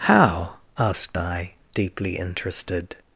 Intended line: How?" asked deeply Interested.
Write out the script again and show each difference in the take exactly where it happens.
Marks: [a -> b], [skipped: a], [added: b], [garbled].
How?" asked [added: I] deeply Interested.